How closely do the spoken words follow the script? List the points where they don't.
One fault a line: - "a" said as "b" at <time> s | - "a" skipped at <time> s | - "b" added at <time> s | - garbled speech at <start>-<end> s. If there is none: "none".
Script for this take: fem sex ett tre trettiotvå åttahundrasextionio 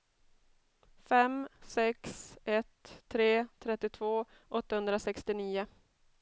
none